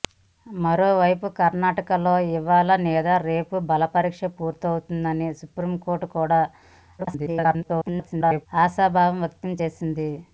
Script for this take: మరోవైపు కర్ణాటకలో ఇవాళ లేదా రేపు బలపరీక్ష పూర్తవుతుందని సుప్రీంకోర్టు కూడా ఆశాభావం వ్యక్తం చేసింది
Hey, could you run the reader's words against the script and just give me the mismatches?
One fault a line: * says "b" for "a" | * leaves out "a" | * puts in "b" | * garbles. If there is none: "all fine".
* garbles